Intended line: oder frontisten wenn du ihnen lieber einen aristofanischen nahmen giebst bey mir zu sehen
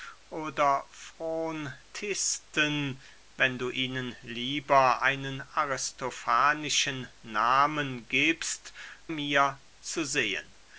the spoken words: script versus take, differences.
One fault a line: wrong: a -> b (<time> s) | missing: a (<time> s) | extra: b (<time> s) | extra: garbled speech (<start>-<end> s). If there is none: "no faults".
missing: bey (8.7 s)